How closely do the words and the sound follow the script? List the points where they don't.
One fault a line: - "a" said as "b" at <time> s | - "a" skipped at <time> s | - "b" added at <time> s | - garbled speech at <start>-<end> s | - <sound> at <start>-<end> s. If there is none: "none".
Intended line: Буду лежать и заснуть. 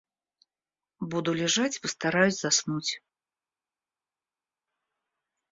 - "постараюсь" added at 1.8 s